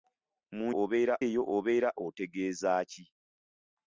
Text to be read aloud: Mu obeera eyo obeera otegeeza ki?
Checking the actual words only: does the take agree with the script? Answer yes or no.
yes